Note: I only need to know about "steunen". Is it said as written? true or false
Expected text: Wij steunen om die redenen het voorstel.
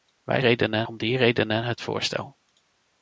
false